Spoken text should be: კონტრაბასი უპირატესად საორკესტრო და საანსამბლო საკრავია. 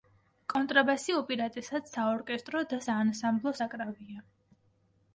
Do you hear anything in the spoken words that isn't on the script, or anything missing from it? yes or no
no